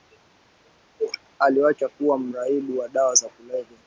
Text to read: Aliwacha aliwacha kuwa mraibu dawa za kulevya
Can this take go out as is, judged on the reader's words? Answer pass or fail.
fail